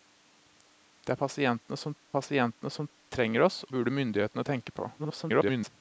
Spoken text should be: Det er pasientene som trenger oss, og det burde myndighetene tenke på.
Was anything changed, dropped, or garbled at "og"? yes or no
yes